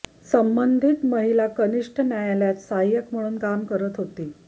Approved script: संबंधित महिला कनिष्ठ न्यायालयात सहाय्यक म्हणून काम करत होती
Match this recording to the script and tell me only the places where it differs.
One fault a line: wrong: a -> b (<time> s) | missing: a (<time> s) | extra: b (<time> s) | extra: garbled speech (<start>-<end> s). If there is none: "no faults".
no faults